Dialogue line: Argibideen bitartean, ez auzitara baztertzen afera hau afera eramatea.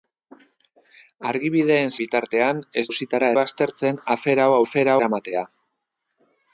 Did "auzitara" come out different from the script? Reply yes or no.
no